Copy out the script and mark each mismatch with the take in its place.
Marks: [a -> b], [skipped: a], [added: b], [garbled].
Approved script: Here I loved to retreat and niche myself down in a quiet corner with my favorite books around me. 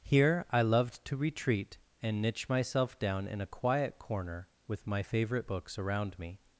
Here I loved to retreat and niche myself down in a quiet corner with my favorite books around me.